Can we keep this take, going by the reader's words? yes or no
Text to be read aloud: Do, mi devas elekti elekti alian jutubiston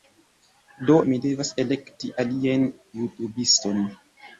no